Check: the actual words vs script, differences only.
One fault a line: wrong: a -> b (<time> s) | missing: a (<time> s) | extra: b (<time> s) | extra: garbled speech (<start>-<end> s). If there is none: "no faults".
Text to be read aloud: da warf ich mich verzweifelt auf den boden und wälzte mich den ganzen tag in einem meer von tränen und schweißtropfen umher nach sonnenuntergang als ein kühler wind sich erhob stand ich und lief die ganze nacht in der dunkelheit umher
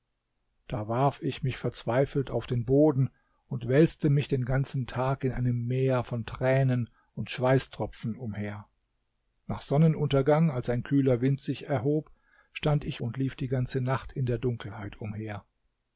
no faults